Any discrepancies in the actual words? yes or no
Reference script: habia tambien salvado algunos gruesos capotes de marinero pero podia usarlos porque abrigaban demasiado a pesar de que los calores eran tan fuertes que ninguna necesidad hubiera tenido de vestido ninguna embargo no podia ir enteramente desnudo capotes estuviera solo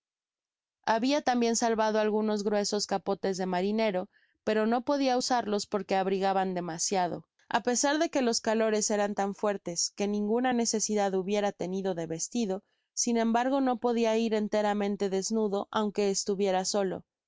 yes